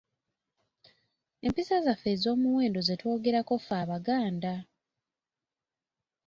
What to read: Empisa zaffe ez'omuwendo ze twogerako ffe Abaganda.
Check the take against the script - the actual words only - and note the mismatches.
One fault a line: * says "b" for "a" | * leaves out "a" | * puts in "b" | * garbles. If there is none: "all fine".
all fine